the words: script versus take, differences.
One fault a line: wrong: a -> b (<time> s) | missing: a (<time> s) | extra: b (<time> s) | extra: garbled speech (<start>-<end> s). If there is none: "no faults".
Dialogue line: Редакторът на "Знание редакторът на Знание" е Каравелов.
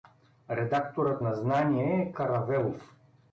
missing: редакторът на Знание (2.0 s)